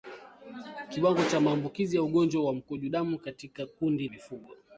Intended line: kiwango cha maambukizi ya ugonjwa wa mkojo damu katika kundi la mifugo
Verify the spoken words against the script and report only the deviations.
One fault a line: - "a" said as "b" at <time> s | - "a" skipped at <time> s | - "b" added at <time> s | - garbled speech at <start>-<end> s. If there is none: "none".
- "la" skipped at 4.1 s